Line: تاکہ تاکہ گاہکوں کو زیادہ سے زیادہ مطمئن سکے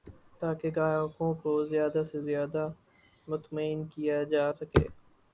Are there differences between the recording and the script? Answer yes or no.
yes